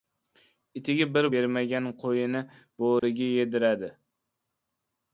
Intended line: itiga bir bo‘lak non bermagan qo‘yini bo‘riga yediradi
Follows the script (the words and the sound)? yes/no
no